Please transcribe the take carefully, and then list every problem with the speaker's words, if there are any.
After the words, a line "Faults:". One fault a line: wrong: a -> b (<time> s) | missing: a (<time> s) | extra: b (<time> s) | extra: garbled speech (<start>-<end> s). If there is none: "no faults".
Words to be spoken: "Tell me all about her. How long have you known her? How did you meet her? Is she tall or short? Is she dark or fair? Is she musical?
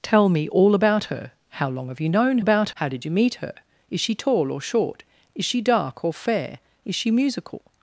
"Tell me all about her. How long have you known about? How did you meet her? Is she tall or short? Is she dark or fair? Is she musical?
Faults:
wrong: her -> about (2.4 s)